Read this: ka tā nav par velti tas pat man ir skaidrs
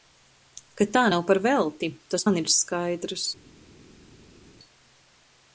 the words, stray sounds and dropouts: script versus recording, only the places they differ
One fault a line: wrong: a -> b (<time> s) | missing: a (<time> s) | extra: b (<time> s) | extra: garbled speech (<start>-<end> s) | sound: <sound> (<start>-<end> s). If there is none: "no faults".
missing: pat (2.3 s)